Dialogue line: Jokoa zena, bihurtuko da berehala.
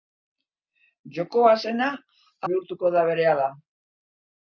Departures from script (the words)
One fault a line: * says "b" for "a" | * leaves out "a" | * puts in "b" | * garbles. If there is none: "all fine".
all fine